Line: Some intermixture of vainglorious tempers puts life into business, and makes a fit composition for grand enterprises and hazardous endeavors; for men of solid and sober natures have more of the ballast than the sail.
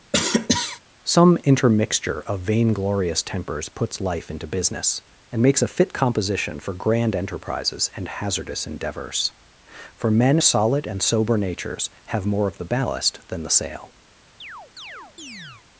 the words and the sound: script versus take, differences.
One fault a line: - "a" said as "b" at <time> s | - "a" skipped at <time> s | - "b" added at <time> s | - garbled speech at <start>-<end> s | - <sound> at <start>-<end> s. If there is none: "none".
- cough at 0.1-0.8 s
- "of" skipped at 10.4 s
- chirp at 14.4-15.7 s